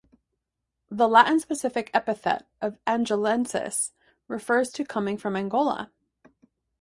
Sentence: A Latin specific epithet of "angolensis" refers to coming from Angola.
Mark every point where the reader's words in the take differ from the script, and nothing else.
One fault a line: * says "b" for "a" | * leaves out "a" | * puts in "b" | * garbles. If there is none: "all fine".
* says "The" for "A"